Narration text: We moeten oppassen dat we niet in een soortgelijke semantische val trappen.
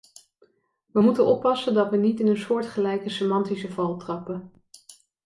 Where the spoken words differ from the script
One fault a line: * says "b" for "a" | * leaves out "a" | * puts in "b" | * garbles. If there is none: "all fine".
all fine